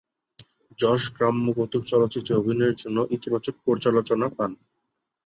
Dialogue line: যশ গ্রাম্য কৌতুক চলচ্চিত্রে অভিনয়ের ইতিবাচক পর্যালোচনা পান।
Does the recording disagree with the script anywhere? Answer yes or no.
yes